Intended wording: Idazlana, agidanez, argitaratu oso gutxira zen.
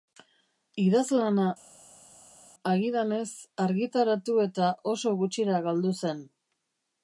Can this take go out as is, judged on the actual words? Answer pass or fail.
fail